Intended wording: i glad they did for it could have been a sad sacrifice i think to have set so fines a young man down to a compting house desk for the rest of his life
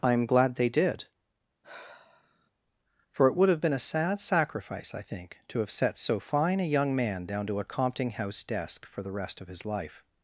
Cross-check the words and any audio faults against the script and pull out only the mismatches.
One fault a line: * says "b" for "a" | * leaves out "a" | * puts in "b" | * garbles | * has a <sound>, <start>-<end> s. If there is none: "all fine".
* puts in "am"
* has a sigh, 1.6-2.5 s
* says "would" for "could"
* says "fine" for "fines"